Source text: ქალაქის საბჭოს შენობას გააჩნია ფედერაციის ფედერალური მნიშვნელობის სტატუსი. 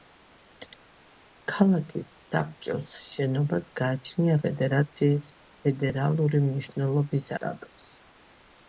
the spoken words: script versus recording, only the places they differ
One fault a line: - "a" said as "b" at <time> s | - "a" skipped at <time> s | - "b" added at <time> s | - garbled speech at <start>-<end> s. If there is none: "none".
none